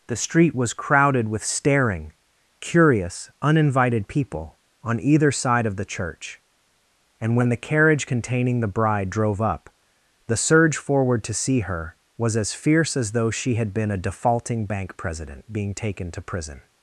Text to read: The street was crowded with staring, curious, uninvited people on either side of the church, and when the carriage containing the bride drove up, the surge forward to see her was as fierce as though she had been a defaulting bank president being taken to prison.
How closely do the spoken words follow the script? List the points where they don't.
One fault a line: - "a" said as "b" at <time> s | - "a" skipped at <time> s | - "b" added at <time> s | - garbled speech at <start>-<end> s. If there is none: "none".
none